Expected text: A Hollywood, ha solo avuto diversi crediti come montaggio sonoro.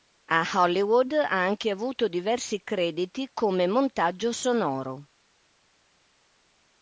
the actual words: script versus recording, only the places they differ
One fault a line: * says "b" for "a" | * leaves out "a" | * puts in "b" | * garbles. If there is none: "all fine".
* says "anche" for "solo"